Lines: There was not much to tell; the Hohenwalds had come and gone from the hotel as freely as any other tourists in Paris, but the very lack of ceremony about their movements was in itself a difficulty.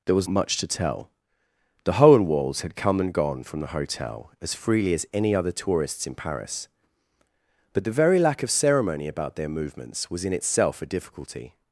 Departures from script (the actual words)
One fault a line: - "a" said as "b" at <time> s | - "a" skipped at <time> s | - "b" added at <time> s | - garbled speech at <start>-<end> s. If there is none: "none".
- "not" skipped at 0.3 s